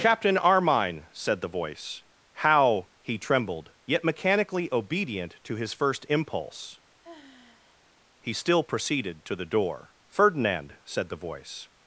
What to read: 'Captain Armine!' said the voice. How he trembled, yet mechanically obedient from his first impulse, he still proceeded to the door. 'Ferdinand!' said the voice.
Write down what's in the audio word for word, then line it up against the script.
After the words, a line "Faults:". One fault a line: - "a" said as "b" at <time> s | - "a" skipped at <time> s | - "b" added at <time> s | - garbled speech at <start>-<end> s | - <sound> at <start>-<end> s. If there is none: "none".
'Captain Armine!' said the voice. How he trembled, yet mechanically obedient to his first impulse, he still proceeded to the door. 'Ferdinand!' said the voice.
Faults:
- "from" said as "to" at 5.4 s
- sigh at 7.0-7.9 s